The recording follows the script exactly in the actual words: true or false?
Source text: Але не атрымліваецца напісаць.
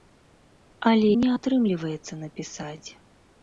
true